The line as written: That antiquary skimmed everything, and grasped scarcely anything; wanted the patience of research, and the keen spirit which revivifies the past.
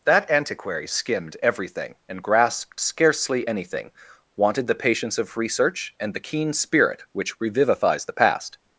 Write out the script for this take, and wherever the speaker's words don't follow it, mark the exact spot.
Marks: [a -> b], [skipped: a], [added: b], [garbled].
That antiquary skimmed everything, and grasped scarcely anything; wanted the patience of research, and the keen spirit which revivifies the past.